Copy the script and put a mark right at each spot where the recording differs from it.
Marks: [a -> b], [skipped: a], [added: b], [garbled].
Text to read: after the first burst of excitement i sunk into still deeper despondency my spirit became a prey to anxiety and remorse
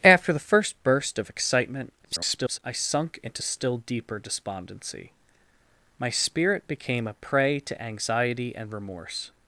after the first burst of excitement [garbled] i sunk into still deeper despondency my spirit became a prey to anxiety and remorse